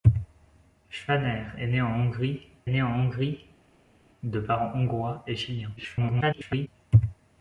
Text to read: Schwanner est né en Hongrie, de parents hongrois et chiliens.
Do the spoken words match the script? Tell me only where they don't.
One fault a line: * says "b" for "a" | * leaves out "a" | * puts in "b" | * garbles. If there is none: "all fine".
* puts in "né en Hongrie"
* garbles